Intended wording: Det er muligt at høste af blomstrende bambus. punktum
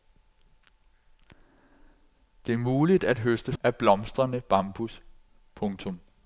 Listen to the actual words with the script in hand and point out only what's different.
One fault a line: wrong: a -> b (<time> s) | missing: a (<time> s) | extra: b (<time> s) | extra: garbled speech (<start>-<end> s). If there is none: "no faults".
no faults